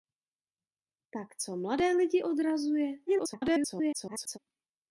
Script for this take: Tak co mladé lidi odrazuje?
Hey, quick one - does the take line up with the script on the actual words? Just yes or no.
no